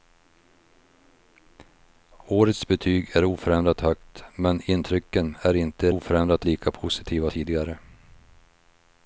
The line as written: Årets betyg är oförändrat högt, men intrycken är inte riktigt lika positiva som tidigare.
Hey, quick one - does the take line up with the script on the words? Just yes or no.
no